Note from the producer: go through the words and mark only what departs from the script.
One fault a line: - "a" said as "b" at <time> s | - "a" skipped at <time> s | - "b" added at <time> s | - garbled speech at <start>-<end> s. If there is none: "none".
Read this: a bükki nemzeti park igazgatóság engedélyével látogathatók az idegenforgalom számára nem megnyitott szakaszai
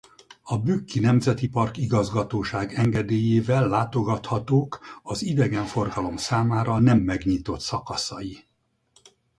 none